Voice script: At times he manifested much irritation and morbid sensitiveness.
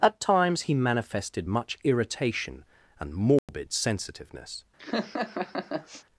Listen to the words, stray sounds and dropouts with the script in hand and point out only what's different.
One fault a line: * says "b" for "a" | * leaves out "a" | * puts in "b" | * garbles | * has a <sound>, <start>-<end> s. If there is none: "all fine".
* has a dropout, 3.4-3.5 s
* has a laugh, 4.8-6.0 s